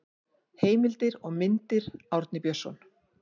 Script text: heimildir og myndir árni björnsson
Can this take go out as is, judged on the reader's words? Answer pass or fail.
pass